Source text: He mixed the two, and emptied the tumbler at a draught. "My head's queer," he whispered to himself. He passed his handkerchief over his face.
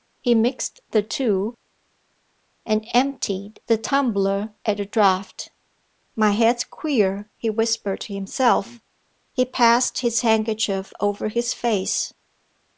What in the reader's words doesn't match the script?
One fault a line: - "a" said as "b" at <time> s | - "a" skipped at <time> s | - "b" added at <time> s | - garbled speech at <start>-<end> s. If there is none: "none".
none